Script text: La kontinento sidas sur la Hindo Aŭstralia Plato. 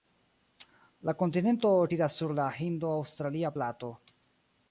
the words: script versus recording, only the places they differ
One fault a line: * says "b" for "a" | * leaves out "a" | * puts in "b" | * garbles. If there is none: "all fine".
all fine